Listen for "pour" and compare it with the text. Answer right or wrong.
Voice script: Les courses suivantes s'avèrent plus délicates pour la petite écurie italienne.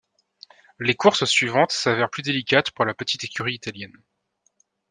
right